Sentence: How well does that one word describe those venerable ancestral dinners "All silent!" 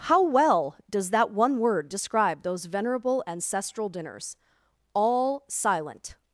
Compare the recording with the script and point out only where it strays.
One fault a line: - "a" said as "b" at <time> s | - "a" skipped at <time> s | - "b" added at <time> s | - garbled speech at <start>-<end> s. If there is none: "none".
none